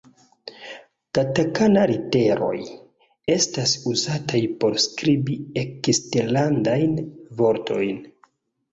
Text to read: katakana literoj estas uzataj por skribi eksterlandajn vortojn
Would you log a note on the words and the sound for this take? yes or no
no